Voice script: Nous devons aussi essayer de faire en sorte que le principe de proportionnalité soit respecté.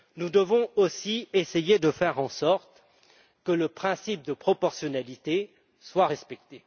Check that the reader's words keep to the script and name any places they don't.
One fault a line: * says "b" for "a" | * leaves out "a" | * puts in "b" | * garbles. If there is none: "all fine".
all fine